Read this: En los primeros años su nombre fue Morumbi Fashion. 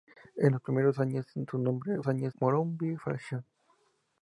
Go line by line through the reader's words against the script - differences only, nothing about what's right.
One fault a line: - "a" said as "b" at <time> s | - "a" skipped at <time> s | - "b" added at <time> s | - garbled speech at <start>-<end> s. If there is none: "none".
- "fue" said as "años" at 2.1 s